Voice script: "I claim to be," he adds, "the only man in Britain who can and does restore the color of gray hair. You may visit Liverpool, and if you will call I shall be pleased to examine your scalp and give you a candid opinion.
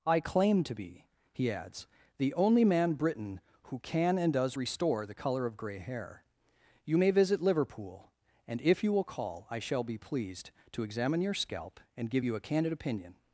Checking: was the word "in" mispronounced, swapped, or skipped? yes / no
yes